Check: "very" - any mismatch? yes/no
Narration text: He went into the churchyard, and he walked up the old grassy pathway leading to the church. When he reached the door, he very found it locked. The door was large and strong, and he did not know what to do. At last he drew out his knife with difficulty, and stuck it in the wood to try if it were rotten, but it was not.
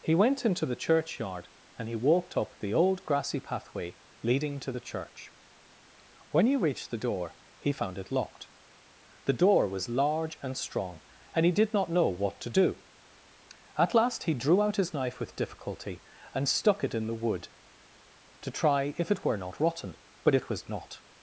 yes